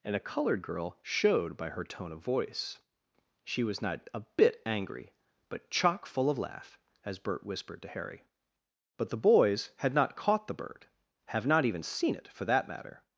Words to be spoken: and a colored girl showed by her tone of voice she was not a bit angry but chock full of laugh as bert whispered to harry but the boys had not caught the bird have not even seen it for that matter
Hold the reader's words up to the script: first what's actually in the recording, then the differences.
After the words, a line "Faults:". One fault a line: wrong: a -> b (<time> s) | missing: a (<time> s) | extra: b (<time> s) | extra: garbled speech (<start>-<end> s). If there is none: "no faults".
and a colored girl showed by her tone of voice she was not a bit angry but chock full of laugh as bert whispered to harry but the boys had not caught the bird have not even seen it for that matter
Faults:
no faults